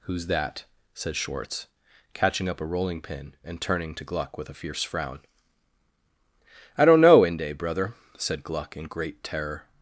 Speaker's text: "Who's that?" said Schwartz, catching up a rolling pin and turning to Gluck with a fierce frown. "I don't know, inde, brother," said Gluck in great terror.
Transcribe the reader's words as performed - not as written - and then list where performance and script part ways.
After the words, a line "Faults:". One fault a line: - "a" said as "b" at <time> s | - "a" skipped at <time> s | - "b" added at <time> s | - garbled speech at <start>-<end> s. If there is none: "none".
"Who's that?" said Schwartz, catching up a rolling pin and turning to Gluck with a fierce frown. "I don't know, inde, brother," said Gluck in great terror.
Faults:
none